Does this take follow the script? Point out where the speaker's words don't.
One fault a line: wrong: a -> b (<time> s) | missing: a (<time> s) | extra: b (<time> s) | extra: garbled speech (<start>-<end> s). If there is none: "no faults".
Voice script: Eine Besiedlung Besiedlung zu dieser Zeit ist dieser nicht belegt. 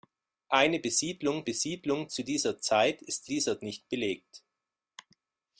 no faults